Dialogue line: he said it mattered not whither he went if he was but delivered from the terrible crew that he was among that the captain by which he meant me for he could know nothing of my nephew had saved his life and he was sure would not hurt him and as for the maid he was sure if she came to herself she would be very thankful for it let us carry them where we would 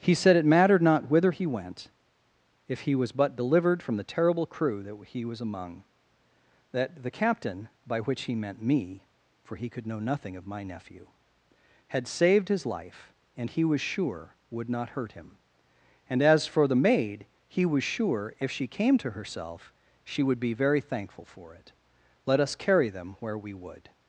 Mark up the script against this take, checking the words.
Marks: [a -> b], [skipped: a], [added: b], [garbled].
he said it mattered not whither he went if he was but delivered from the terrible crew that he was among that the captain by which he meant me for he could know nothing of my nephew had saved his life and he was sure would not hurt him and as for the maid he was sure if she came to herself she would be very thankful for it let us carry them where we would